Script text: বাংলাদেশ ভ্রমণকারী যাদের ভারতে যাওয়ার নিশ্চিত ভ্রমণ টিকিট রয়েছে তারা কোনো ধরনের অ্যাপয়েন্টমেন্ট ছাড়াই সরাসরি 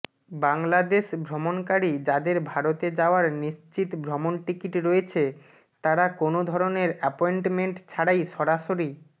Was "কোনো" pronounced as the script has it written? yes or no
yes